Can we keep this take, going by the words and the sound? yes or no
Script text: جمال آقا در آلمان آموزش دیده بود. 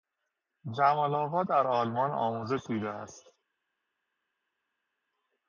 no